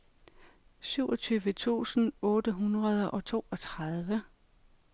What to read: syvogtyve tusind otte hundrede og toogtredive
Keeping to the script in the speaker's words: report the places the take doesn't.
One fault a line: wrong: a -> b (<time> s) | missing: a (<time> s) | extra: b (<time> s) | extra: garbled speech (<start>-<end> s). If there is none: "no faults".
no faults